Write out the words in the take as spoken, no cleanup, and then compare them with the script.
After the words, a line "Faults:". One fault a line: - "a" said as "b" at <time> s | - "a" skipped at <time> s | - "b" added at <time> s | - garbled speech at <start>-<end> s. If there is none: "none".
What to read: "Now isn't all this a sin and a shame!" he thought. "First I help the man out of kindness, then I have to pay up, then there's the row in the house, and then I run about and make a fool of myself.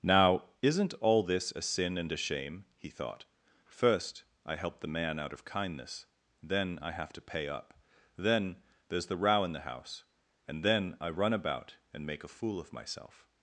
"Now isn't all this a sin and a shame!" he thought. "First I help the man out of kindness, then I have to pay up, then there's the row in the house, and then I run about and make a fool of myself.
Faults:
none